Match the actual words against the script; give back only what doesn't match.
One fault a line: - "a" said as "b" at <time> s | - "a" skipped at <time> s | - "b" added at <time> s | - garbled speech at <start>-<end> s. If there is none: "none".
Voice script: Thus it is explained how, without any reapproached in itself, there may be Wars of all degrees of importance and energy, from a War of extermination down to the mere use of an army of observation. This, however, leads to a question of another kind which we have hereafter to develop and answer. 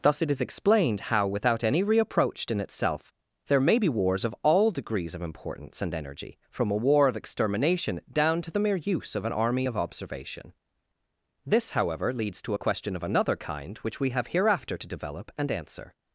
none